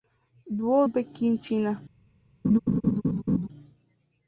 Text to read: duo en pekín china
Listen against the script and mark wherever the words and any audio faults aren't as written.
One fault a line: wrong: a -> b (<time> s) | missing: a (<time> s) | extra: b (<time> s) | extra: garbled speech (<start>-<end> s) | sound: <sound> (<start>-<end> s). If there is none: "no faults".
sound: laugh (2.4-3.5 s)